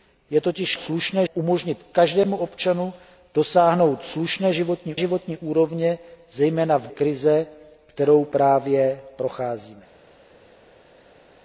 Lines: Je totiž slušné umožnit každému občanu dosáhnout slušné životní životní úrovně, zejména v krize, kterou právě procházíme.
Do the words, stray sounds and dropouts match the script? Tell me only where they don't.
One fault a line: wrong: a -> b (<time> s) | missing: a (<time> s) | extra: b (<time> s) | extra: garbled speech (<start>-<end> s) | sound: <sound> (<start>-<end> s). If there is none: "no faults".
no faults